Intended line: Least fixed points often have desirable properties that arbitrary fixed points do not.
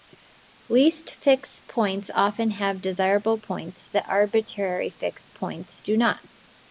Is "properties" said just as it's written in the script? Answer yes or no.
no